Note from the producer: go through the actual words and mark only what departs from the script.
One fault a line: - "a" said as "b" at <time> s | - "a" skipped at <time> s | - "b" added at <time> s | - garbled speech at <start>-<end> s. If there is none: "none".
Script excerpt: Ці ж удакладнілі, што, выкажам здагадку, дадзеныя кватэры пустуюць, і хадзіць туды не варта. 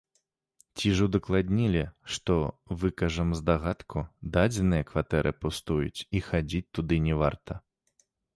none